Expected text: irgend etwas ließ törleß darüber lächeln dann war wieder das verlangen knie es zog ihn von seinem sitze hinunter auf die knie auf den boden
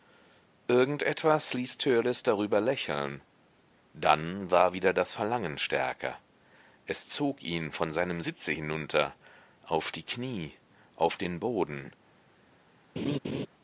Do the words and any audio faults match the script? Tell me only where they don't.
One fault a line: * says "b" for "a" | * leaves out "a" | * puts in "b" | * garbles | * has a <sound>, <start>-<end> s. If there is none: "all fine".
* says "stärker" for "knie"
* has a laugh, 13.0-13.5 s